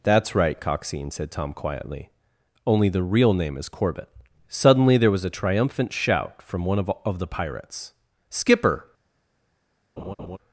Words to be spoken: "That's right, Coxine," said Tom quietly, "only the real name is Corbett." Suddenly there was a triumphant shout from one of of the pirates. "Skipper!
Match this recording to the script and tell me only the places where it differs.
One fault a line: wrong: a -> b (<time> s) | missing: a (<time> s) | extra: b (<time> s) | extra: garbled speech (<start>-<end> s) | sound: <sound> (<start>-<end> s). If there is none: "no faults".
sound: laugh (10.0-10.4 s)